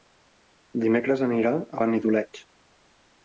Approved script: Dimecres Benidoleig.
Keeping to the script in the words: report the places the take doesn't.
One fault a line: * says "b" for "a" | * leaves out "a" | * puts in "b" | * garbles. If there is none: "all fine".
* puts in "anirà a"